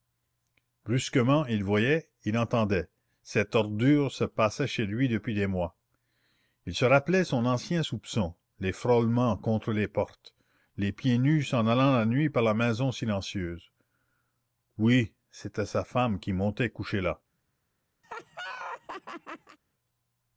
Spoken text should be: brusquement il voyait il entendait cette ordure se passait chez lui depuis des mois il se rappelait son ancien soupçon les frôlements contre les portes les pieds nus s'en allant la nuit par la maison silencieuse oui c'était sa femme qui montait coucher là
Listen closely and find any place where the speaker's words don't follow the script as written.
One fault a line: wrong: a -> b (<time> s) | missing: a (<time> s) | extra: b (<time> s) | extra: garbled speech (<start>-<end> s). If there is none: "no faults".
no faults